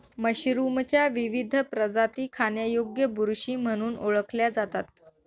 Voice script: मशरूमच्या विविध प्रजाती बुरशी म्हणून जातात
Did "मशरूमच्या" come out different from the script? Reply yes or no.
no